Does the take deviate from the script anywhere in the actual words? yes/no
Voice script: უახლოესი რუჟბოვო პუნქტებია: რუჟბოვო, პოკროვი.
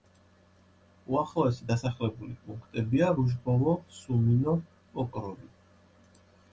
yes